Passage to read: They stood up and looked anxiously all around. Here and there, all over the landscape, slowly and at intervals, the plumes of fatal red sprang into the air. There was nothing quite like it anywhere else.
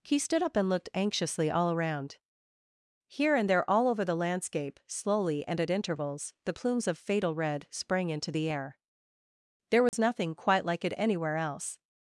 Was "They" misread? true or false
true